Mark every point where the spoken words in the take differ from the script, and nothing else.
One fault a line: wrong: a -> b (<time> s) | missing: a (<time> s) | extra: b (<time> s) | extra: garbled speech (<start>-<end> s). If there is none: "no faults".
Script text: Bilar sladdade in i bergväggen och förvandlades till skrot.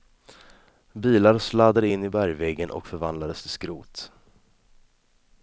no faults